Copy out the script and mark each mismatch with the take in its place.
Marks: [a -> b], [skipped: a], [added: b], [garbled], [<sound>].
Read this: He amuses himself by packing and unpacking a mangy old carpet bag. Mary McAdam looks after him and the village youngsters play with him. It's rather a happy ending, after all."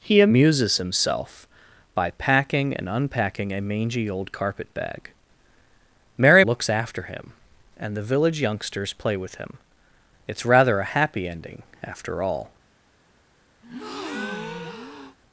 He amuses himself by packing and unpacking a mangy old carpet bag. Mary [skipped: McAdam] looks after him and the village youngsters play with him. It's rather a happy ending, after all." [breath]